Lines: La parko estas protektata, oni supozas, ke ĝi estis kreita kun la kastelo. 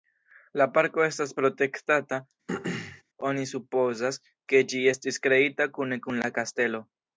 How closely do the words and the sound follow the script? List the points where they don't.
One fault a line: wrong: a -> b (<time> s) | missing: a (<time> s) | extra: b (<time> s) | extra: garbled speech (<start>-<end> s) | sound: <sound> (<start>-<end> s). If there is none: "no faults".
sound: throat clearing (2.5-3.0 s)
extra: kune (5.8 s)